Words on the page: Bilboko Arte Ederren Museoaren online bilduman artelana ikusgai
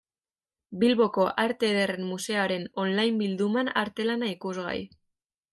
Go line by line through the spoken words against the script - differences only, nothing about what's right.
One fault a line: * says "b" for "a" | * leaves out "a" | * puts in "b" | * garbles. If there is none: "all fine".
all fine